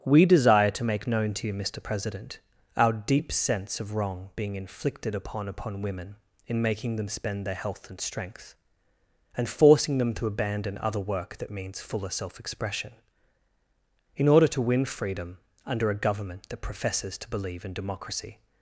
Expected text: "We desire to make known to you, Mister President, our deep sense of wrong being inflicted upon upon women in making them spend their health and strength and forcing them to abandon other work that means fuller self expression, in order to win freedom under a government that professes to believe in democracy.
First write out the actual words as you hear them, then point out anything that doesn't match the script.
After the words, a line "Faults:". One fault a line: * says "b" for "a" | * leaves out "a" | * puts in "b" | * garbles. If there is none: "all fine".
"We desire to make known to you, Mister President, our deep sense of wrong being inflicted upon upon women in making them spend their health and strength and forcing them to abandon other work that means fuller self expression, in order to win freedom under a government that professes to believe in democracy.
Faults:
all fine